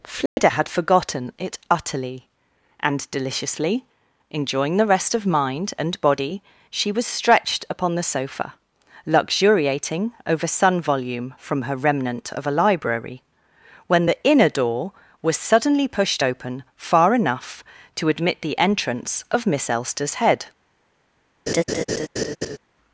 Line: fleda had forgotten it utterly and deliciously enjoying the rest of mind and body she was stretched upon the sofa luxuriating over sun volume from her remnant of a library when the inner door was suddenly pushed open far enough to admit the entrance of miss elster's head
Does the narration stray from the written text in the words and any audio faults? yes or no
yes